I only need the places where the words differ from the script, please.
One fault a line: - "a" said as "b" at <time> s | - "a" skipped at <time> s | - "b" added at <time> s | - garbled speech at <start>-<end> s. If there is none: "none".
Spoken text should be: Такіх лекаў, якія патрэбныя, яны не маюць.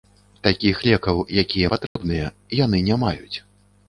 none